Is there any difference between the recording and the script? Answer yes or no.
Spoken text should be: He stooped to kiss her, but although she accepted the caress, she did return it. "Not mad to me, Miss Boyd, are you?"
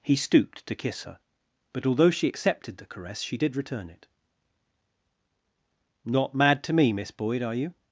no